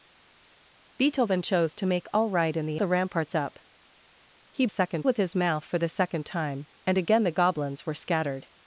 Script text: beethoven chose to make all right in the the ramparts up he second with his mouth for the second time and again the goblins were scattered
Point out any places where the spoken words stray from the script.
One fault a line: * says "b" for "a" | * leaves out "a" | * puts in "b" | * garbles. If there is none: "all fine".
all fine